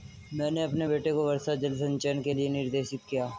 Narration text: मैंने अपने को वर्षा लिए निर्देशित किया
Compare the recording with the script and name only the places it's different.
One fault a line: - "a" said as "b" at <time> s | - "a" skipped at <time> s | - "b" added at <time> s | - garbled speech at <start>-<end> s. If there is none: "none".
- "बेटे" added at 0.9 s
- "जल संचयन के" added at 1.6 s